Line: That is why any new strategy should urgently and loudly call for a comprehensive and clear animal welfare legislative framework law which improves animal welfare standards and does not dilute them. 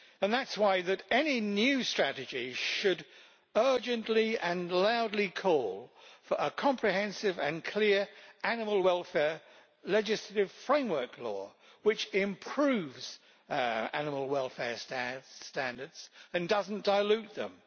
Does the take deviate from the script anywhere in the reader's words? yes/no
no